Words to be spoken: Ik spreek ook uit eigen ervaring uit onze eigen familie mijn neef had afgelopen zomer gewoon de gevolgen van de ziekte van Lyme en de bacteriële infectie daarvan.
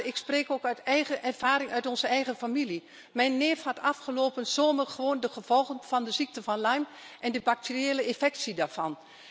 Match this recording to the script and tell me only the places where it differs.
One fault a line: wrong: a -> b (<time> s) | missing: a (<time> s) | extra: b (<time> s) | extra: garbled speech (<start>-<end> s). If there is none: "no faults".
no faults